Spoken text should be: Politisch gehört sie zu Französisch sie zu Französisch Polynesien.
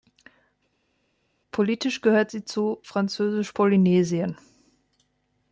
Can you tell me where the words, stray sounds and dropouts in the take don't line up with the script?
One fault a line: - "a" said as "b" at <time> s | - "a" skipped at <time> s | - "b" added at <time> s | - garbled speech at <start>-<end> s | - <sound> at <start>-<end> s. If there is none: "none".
- "sie zu Französisch" skipped at 3.5 s